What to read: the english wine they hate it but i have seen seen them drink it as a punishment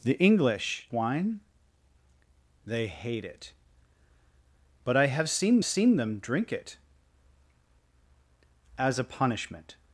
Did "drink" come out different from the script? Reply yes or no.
no